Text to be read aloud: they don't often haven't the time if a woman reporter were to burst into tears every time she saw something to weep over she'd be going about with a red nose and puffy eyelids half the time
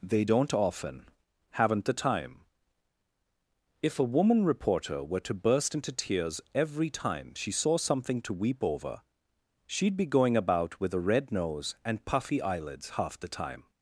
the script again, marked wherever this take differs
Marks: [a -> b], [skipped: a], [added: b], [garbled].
they don't often haven't the time if a woman reporter were to burst into tears every time she saw something to weep over she'd be going about with a red nose and puffy eyelids half the time